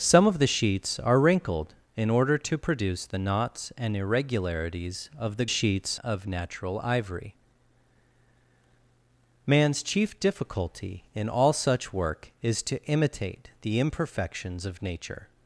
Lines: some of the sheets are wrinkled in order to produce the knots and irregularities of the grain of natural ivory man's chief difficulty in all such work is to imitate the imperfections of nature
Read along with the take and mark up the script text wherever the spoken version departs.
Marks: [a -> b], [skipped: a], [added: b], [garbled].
some of the sheets are wrinkled in order to produce the knots and irregularities of the [grain -> sheets] of natural ivory man's chief difficulty in all such work is to imitate the imperfections of nature